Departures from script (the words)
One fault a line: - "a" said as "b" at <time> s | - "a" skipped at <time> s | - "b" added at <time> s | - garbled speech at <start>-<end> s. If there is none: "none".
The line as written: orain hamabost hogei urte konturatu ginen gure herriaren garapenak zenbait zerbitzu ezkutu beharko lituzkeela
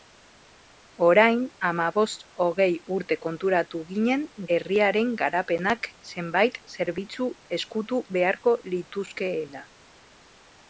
- "gure" skipped at 4.2 s